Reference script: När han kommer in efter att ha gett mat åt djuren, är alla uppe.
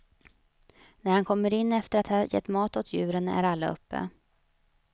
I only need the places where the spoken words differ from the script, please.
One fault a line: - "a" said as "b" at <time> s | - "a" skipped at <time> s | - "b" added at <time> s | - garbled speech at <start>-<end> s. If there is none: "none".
none